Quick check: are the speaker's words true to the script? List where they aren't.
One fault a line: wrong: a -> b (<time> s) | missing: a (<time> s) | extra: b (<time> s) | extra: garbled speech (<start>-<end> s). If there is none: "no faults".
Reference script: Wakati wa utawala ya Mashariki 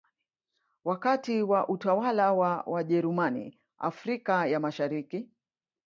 extra: wa Wajerumani Afrika (2.3 s)